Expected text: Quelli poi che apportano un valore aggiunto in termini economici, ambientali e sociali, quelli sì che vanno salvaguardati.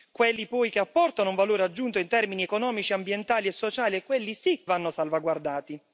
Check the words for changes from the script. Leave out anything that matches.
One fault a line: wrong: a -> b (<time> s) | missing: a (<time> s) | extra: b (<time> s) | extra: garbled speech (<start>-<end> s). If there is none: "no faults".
missing: che (4.6 s)